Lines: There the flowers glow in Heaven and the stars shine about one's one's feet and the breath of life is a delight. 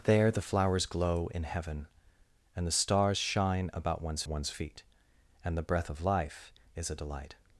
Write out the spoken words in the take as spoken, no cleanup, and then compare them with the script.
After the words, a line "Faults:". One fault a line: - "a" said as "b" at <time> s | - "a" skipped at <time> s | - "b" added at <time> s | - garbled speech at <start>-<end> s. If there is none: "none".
There the flowers glow in Heaven and the stars shine about one's one's feet and the breath of life is a delight.
Faults:
none